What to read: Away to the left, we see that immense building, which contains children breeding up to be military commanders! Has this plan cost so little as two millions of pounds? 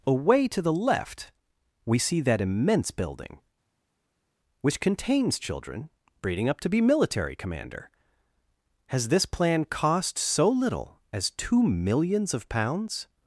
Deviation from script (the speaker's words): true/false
true